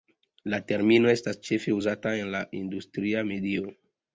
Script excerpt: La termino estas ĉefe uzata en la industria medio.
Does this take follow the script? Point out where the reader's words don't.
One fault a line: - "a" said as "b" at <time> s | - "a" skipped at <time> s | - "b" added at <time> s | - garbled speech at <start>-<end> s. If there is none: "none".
none